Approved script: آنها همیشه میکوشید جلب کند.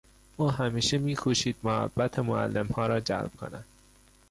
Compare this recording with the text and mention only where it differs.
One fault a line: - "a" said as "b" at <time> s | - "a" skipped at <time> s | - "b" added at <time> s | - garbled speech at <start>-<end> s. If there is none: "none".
- "آنها" said as "او" at 0.4 s
- "محبت معلمها را" added at 1.6 s